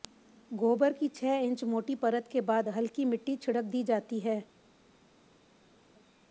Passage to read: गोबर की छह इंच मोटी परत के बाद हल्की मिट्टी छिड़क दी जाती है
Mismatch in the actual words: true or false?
false